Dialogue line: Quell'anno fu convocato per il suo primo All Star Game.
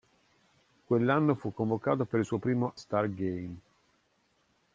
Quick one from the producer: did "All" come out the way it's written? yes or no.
no